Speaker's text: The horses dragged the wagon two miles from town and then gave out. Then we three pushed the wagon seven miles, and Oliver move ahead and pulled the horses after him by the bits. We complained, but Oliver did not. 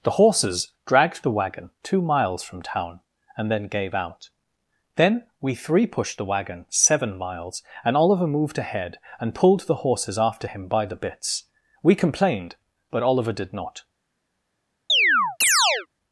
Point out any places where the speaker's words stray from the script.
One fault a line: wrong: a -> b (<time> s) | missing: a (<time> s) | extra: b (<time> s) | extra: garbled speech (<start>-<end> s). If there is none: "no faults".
wrong: move -> moved (8.3 s)